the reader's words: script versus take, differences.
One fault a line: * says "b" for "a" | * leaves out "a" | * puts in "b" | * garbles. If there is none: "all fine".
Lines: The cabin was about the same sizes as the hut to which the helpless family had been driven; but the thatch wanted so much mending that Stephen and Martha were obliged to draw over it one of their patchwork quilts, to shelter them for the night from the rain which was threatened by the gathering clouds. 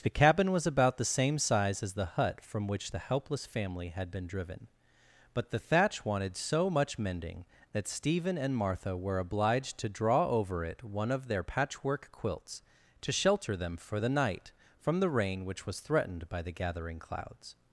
* says "size" for "sizes"
* says "from" for "to"